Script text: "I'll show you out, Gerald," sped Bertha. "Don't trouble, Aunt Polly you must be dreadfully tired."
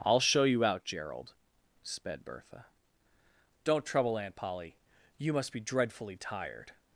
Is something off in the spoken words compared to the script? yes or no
no